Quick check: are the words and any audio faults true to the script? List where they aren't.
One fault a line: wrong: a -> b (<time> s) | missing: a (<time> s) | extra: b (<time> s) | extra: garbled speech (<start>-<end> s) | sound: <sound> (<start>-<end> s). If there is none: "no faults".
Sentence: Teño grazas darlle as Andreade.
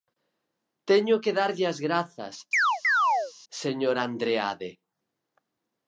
wrong: grazas -> que (1.2 s)
extra: grazas señor (1.9 s)
sound: chirp (2.5-3.3 s)